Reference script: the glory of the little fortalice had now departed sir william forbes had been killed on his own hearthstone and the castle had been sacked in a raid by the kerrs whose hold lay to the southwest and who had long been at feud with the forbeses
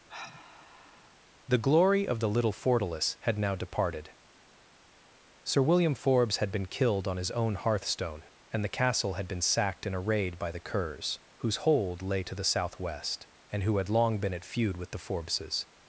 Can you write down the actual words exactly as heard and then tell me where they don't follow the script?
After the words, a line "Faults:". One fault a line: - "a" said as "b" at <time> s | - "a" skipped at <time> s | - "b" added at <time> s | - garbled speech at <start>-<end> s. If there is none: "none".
the glory of the little fortalice had now departed sir william forbes had been killed on his own hearthstone and the castle had been sacked in a raid by the kerrs whose hold lay to the southwest and who had long been at feud with the forbeses
Faults:
none